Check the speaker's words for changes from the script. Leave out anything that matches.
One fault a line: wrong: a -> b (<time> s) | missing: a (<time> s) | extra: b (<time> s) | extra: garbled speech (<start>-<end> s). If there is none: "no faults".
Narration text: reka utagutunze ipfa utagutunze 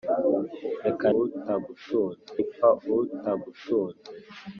no faults